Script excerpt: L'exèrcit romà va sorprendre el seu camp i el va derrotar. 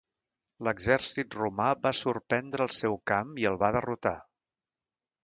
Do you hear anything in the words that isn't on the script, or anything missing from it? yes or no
no